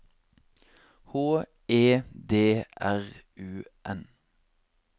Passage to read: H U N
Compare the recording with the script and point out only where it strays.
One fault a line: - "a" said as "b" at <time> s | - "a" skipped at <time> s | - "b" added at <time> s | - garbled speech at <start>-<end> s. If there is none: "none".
- "E D R" added at 1.7 s